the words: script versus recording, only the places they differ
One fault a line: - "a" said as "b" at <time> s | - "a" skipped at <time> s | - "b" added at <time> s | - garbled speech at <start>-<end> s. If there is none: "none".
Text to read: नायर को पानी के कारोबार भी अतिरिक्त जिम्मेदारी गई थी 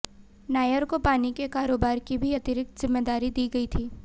- "की" added at 2.0 s
- "दी" added at 3.3 s